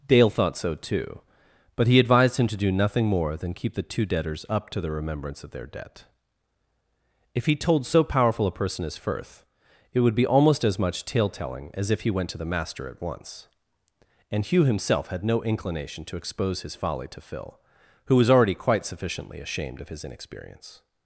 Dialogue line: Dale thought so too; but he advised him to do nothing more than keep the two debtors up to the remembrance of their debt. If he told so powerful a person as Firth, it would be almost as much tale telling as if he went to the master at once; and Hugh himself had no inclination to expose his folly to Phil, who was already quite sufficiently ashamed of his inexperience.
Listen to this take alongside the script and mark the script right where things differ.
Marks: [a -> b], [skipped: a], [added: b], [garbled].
Dale thought so too; but he advised him to do nothing more than keep the two debtors up to the remembrance of their debt. If he told so powerful a person as Firth, it would be almost as much tale telling as if he went to the master at once; and Hugh himself had no inclination to expose his folly to Phil, who was already quite sufficiently ashamed of his inexperience.